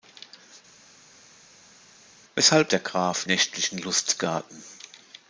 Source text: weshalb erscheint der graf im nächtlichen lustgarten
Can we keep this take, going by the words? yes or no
no